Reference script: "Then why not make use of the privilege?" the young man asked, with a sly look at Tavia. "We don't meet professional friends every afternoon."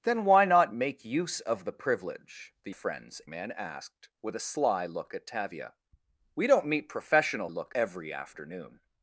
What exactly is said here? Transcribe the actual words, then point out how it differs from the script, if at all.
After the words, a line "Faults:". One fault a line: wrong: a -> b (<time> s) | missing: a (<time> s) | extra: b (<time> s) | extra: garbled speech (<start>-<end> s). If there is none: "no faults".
"Then why not make use of the privilege?" the friends man asked, with a sly look at Tavia. "We don't meet professional look every afternoon."
Faults:
wrong: young -> friends (2.7 s)
wrong: friends -> look (7.5 s)